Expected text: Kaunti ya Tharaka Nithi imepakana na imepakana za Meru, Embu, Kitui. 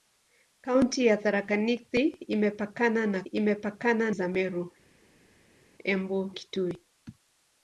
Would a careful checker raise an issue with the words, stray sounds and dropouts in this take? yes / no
no